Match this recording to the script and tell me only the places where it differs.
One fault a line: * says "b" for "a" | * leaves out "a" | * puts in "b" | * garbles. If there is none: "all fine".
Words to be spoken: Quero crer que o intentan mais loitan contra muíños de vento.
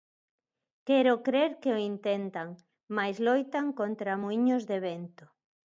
all fine